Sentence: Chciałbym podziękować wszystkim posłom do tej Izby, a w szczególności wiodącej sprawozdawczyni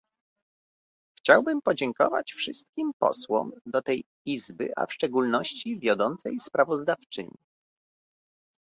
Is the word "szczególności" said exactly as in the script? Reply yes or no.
yes